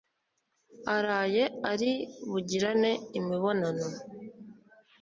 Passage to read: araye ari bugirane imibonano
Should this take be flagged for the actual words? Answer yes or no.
no